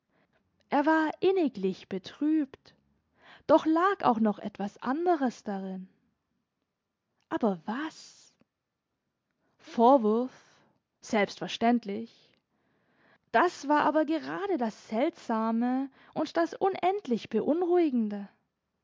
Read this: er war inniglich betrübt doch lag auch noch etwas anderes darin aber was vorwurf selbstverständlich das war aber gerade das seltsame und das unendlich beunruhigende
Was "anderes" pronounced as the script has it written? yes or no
yes